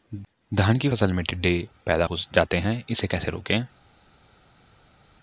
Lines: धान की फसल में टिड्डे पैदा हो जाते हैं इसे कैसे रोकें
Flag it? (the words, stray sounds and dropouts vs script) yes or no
no